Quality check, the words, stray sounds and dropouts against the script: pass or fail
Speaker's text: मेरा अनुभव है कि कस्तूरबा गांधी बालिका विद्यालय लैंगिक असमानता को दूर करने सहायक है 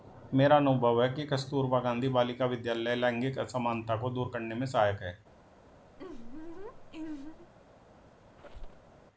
fail